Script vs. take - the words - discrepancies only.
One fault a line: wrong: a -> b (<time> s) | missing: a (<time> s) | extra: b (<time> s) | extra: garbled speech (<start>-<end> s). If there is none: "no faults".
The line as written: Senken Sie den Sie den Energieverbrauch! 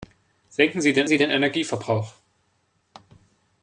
no faults